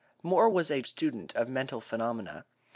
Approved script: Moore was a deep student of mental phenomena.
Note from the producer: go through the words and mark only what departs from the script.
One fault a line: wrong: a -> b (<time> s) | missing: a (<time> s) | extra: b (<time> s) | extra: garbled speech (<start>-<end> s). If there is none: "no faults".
missing: deep (0.8 s)